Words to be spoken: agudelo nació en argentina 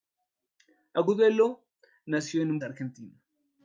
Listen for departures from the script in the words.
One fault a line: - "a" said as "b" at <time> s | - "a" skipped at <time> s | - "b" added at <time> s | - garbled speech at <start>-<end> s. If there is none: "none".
none